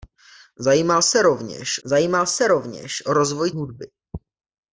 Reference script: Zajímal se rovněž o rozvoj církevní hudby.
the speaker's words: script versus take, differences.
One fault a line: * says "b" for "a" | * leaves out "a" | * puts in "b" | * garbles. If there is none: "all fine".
* puts in "zajímal se rovněž"
* leaves out "církevní"